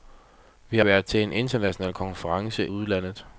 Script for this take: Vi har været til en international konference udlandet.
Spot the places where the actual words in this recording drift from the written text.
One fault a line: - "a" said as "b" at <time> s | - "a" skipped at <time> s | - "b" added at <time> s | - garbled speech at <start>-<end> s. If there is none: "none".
none